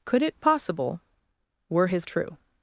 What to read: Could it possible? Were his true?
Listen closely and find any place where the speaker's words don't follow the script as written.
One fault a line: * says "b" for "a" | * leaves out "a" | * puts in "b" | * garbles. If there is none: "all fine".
all fine